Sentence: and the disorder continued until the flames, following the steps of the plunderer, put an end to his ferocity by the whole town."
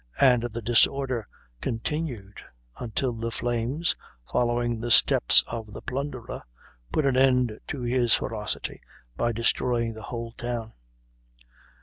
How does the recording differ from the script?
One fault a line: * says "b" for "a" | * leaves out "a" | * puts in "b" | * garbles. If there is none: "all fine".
* puts in "destroying"